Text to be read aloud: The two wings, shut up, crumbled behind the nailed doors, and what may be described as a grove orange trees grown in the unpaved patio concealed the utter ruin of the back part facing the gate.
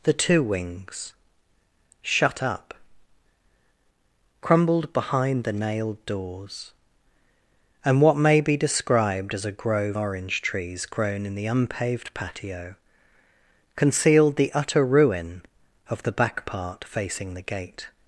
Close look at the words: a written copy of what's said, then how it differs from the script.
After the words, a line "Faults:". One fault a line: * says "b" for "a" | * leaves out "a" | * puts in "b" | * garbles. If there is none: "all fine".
The two wings, shut up, crumbled behind the nailed doors, and what may be described as a grove orange trees grown in the unpaved patio concealed the utter ruin of the back part facing the gate.
Faults:
all fine